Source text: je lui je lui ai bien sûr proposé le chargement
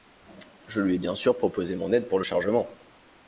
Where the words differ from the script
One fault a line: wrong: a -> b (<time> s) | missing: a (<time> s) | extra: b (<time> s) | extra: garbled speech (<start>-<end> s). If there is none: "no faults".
missing: je lui (0.9 s)
extra: mon aide pour (1.8 s)